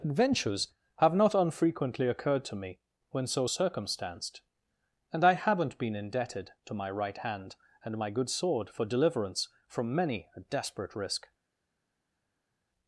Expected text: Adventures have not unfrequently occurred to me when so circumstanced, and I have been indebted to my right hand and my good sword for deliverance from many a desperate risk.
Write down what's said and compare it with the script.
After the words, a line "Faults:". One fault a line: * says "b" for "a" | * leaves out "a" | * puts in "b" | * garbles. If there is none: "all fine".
Adventures have not unfrequently occurred to me when so circumstanced, and I haven't been indebted to my right hand and my good sword for deliverance from many a desperate risk.
Faults:
* says "haven't" for "have"